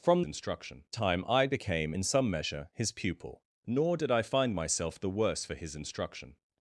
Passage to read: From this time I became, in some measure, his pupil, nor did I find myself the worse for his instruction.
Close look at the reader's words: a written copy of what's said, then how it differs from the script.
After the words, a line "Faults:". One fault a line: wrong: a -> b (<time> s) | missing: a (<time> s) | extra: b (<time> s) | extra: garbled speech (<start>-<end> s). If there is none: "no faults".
From instruction time I became, in some measure, his pupil, nor did I find myself the worse for his instruction.
Faults:
wrong: this -> instruction (0.2 s)